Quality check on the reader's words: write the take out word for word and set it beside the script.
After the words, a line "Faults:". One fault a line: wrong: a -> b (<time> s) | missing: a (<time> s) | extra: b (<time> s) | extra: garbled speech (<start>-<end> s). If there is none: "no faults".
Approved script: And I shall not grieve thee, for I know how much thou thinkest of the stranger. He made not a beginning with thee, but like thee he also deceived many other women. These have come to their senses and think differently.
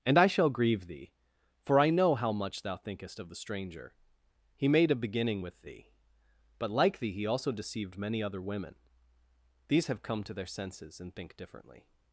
And I shall grieve thee, for I know how much thou thinkest of the stranger. He made a beginning with thee, but like thee he also deceived many other women. These have come to their senses and think differently.
Faults:
missing: not (0.5 s)
missing: not (4.9 s)